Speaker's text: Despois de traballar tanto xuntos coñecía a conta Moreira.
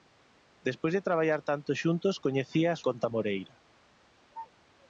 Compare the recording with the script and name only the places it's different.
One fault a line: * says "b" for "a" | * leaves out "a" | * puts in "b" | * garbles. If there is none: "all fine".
all fine